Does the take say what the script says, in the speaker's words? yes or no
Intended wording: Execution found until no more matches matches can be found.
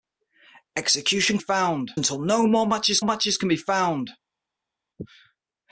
yes